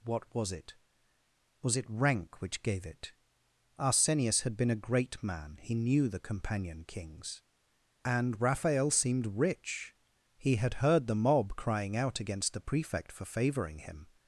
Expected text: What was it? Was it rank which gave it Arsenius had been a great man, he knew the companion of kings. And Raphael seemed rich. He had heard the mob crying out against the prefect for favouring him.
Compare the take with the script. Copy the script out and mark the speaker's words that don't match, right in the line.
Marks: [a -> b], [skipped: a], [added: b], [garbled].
What was it? Was it rank which gave it Arsenius had been a great man, he knew the companion [skipped: of] kings. And Raphael seemed rich. He had heard the mob crying out against the prefect for favouring him.